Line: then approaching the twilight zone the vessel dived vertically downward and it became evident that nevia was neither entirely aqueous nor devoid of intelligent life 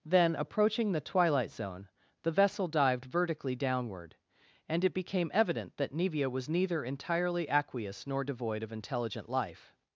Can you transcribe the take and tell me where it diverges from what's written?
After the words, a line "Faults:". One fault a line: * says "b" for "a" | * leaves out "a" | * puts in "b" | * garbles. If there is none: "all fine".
then approaching the twilight zone the vessel dived vertically downward and it became evident that nevia was neither entirely aqueous nor devoid of intelligent life
Faults:
all fine